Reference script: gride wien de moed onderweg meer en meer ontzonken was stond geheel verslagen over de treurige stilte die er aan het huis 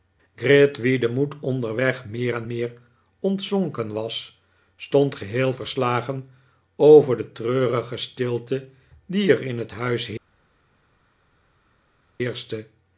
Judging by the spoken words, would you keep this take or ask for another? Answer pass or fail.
fail